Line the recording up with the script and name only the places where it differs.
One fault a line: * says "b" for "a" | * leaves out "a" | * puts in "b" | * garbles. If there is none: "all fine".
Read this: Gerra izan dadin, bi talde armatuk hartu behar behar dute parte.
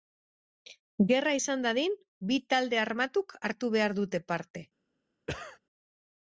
* leaves out "behar"